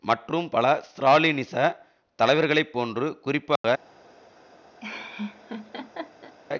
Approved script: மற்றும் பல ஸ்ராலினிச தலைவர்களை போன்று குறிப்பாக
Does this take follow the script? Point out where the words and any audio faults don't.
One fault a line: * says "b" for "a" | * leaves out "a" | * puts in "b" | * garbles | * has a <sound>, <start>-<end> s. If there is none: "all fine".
* has a dropout, 3.6-3.6 s
* has a laugh, 4.8-6.4 s